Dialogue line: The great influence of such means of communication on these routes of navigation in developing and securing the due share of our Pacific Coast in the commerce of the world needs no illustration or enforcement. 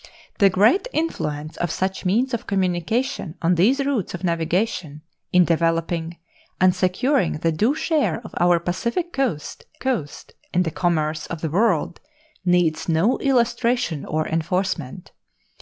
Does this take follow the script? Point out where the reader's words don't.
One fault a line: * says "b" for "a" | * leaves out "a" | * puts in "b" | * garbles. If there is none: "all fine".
* puts in "Coast"